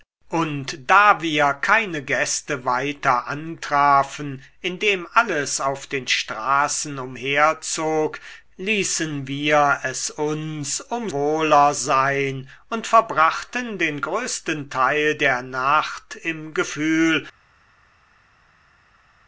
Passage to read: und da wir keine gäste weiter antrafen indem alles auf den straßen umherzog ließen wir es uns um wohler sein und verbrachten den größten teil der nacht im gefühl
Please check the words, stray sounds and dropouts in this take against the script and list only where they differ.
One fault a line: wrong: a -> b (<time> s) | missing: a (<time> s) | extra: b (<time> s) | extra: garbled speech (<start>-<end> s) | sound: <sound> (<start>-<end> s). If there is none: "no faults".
no faults